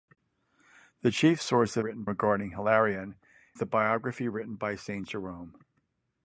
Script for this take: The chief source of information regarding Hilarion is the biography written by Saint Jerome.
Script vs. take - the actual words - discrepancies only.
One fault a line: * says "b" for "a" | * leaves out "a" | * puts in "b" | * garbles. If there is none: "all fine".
* says "written" for "information"
* leaves out "is"